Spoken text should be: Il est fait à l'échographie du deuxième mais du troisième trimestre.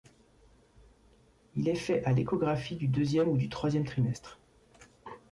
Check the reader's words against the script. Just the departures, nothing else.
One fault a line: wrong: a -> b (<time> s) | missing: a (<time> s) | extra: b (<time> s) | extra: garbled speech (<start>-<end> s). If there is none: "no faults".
wrong: mais -> ou (3.3 s)